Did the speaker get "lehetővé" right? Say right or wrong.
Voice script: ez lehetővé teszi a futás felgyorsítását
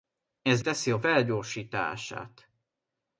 wrong